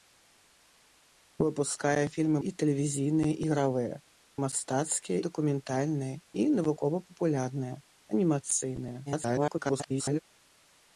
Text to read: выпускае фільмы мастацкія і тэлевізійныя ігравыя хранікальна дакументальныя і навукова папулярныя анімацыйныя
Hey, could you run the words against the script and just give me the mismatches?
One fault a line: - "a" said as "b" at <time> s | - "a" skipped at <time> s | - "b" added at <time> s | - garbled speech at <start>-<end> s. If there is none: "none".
- "мастацкія" skipped at 2.4 s
- "хранікальна" said as "мастацкія" at 4.4 s
- garbled speech at 9.1-10.2 s